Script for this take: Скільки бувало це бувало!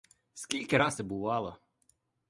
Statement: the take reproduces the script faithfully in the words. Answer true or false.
false